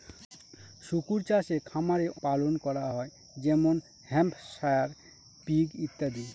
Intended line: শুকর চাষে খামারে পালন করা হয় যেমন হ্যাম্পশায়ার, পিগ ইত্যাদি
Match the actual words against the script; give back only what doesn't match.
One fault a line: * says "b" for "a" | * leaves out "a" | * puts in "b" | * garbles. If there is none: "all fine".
all fine